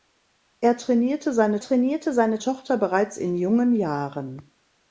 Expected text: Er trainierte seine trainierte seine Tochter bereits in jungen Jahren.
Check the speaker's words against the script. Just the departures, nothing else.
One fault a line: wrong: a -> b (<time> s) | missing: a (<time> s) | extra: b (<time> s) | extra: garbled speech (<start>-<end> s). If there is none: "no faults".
no faults